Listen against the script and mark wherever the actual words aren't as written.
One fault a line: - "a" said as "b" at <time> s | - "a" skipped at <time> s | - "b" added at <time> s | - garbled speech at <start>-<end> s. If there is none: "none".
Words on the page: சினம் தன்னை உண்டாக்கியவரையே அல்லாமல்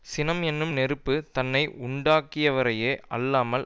- "என்னும் நெருப்பு" added at 0.4 s